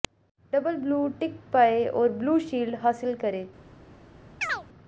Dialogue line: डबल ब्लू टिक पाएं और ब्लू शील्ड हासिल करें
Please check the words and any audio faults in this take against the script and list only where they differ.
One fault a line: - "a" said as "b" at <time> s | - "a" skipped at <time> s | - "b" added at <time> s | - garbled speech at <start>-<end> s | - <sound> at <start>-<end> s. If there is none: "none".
- chirp at 4.4-4.7 s